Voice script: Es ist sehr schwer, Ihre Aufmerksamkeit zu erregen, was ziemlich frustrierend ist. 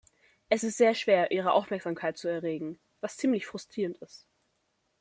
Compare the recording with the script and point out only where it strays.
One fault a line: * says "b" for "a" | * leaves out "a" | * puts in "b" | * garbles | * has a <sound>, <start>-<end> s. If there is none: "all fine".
all fine